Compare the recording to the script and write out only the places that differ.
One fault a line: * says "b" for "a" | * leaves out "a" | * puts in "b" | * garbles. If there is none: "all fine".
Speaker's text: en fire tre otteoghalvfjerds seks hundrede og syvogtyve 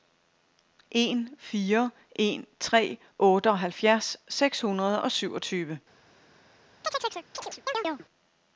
* puts in "en"